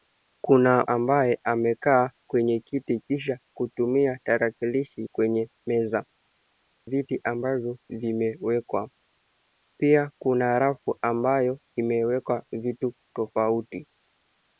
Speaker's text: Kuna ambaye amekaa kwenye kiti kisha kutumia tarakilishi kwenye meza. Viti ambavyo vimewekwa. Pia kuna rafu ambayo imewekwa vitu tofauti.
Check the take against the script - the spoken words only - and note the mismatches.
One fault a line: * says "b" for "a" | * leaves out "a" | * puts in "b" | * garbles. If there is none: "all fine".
all fine